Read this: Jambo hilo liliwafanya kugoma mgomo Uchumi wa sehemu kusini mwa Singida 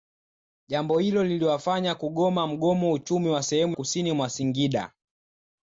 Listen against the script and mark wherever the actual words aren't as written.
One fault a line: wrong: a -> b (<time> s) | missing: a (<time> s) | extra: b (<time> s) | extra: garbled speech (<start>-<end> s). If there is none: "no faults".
no faults